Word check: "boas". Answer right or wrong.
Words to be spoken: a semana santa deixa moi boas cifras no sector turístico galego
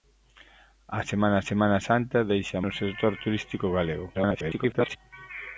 wrong